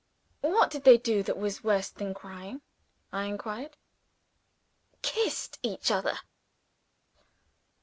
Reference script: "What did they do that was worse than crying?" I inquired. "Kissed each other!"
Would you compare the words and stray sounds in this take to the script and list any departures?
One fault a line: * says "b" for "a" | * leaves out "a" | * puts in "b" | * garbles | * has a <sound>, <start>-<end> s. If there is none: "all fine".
all fine